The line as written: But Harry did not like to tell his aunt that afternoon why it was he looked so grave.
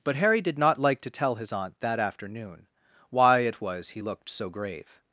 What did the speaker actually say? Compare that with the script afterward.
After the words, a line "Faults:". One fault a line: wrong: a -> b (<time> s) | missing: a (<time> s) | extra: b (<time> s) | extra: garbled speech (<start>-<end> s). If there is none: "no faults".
But Harry did not like to tell his aunt that afternoon why it was he looked so grave.
Faults:
no faults